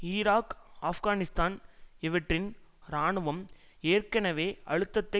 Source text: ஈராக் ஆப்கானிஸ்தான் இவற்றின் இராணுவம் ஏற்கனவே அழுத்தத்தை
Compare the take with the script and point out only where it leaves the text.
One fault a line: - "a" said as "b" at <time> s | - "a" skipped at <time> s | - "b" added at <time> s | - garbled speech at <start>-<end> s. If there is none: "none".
none